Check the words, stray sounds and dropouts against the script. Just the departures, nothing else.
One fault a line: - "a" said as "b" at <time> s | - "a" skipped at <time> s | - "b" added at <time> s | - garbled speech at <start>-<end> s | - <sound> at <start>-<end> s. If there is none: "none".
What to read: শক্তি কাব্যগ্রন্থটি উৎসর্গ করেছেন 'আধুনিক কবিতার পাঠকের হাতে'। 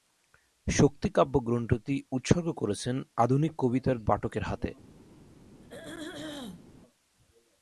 - throat clearing at 5.6-6.7 s